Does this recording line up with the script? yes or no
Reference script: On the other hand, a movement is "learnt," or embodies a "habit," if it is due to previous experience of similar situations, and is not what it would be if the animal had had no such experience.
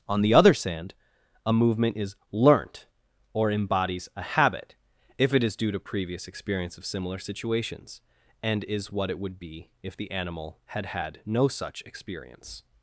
no